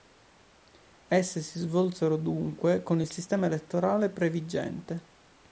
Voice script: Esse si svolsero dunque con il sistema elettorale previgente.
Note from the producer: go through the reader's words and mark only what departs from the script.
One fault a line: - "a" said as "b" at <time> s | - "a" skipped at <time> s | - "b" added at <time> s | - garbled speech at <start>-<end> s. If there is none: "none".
none